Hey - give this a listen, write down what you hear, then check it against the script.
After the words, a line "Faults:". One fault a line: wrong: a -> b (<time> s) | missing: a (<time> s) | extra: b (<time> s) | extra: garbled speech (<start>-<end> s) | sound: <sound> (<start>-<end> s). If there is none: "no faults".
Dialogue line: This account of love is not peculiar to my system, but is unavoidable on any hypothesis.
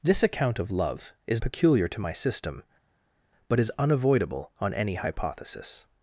This account of love is peculiar to my system, but is unavoidable on any hypothesis.
Faults:
missing: not (1.4 s)